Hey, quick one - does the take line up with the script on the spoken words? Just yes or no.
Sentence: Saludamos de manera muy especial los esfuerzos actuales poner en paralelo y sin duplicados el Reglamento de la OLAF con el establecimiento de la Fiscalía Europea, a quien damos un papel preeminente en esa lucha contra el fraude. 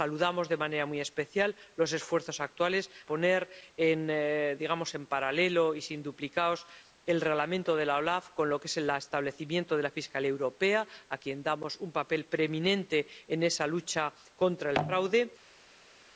yes